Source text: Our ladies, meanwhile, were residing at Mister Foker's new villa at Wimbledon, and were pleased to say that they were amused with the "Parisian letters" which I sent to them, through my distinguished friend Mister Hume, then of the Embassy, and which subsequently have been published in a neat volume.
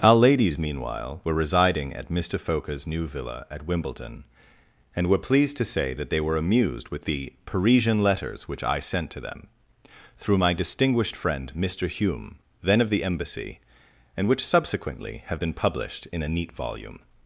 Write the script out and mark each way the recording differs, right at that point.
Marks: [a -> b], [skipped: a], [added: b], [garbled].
Our ladies, meanwhile, were residing at Mister Foker's new villa at Wimbledon, and were pleased to say that they were amused with the "Parisian letters" which I sent to them, through my distinguished friend Mister Hume, then of the Embassy, and which subsequently have been published in a neat volume.